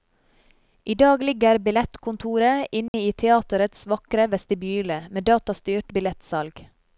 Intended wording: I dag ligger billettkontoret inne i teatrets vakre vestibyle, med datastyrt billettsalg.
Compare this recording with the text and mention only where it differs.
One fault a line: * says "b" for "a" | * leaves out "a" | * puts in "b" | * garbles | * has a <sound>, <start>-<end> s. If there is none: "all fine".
* has a dropout, 2.9-2.9 s